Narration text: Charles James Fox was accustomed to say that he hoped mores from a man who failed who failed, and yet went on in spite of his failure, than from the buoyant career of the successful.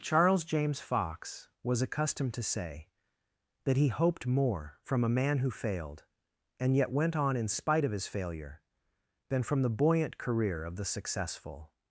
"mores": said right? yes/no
no